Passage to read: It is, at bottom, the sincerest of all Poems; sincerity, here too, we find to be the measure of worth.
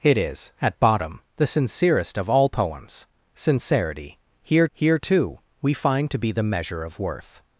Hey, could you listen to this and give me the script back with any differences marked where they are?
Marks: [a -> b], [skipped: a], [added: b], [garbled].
It is, at bottom, the sincerest of all Poems; sincerity, here [added: here] too, we find to be the measure of worth.